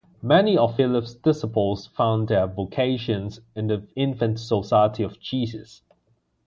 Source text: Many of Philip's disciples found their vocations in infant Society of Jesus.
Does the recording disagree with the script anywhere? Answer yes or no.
yes